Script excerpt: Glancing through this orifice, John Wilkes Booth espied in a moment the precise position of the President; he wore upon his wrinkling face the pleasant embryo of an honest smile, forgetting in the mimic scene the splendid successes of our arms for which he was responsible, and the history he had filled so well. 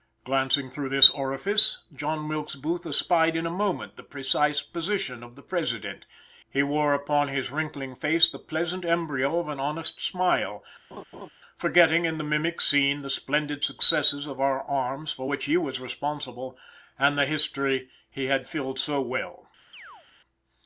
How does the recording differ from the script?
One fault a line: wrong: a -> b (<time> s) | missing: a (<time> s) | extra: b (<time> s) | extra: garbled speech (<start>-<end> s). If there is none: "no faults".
no faults